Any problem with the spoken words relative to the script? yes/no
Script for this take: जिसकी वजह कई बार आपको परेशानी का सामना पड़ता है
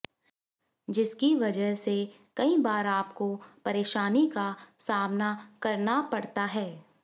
yes